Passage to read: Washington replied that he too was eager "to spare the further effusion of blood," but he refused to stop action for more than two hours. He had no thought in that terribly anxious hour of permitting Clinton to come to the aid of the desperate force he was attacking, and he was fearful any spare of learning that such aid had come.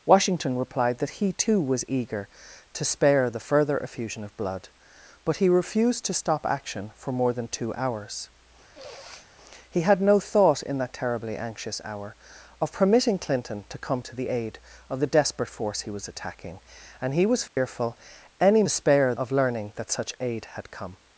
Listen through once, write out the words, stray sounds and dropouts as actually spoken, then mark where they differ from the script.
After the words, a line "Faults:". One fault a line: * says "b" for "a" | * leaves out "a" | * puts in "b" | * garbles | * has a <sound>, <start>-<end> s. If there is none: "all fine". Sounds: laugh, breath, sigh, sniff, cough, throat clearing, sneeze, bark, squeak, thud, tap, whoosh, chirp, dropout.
Washington replied that he too was eager "to spare the further effusion of blood," but he refused to stop action for more than two hours. He had no thought in that terribly anxious hour of permitting Clinton to come to the aid of the desperate force he was attacking, and he was fearful any spare of learning that such aid had come.
Faults:
* has a sniff, 8.7-9.3 s
* has a dropout, 17.5-17.6 s